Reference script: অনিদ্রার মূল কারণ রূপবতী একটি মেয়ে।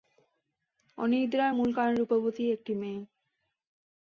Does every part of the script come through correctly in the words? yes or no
yes